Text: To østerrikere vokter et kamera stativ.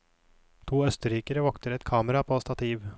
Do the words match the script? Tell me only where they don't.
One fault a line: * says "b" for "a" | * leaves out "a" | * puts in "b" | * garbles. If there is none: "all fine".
* puts in "på"